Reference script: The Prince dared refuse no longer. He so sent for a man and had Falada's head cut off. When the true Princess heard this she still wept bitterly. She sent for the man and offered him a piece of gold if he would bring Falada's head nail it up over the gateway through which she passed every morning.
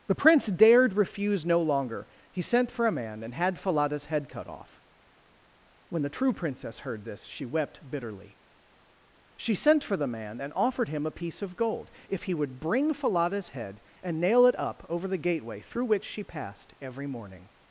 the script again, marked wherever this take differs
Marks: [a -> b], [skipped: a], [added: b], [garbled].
The Prince dared refuse no longer. He [skipped: so] sent for a man and had Falada's head cut off. When the true Princess heard this she [skipped: still] wept bitterly. She sent for the man and offered him a piece of gold if he would bring Falada's head [added: and] nail it up over the gateway through which she passed every morning.